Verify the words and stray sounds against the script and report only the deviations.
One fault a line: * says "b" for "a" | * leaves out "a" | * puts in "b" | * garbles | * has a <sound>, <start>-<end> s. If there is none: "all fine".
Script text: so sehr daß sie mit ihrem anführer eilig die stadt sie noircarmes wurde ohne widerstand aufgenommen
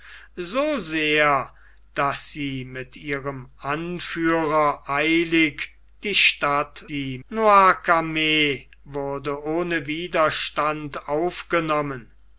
all fine